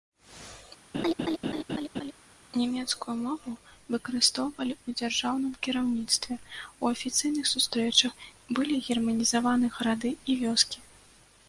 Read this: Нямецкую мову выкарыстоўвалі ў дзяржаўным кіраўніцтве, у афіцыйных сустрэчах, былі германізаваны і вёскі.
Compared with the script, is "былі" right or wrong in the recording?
right